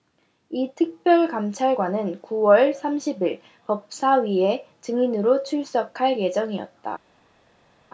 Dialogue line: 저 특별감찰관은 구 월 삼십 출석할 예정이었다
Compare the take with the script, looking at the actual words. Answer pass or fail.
fail